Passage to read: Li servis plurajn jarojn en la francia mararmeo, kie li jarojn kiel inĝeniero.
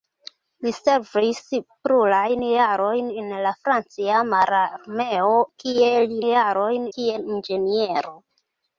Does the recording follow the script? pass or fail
pass